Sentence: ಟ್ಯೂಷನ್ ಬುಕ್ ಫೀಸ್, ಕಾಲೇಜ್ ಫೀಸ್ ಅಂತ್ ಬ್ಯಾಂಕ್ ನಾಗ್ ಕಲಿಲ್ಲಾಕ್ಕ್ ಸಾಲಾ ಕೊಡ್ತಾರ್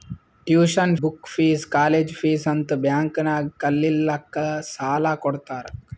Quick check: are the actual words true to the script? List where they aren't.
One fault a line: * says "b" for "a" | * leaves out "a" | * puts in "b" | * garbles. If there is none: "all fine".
all fine